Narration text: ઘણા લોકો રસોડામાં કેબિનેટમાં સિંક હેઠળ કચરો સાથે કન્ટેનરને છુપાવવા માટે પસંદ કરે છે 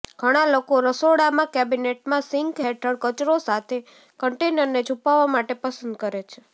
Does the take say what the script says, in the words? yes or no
yes